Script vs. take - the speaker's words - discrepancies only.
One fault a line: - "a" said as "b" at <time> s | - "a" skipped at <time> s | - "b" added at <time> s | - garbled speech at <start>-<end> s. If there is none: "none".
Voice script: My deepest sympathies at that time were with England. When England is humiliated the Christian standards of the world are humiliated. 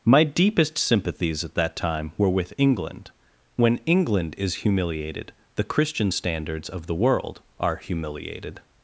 none